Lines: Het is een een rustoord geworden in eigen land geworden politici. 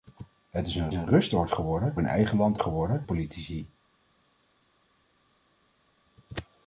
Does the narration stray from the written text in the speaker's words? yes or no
no